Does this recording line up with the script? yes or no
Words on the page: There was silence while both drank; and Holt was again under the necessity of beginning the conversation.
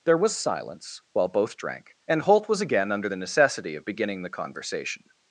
yes